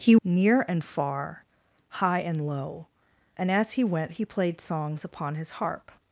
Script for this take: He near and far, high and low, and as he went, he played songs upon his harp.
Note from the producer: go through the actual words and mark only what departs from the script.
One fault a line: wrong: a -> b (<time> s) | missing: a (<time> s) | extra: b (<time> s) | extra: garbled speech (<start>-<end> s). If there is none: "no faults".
no faults